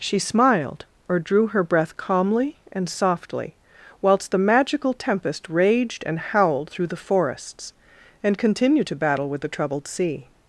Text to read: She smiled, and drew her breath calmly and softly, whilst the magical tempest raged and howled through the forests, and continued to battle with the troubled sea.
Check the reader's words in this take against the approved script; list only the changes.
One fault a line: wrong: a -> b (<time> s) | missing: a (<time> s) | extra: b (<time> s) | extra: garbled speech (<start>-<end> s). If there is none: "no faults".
wrong: and -> or (1.1 s)